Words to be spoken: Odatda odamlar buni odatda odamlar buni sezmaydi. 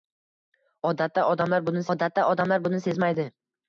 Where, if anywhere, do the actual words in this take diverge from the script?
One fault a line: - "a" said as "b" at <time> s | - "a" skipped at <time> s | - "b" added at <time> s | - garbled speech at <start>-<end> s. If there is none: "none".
none